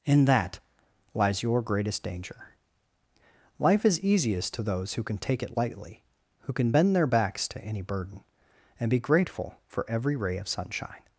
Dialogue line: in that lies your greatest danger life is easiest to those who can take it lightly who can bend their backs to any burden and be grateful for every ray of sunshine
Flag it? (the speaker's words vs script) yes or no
no